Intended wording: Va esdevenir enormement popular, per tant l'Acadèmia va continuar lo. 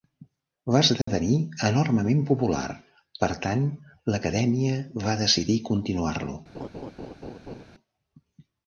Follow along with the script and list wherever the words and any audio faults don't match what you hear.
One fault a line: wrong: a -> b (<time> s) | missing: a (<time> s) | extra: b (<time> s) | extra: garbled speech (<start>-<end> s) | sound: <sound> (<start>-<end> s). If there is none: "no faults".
sound: dropout (1.0-1.1 s)
extra: decidir (5.2 s)
sound: laugh (6.5-7.6 s)